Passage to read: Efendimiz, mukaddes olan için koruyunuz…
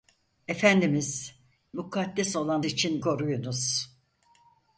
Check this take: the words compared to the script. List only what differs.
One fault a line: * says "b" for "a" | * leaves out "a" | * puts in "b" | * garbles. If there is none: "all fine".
all fine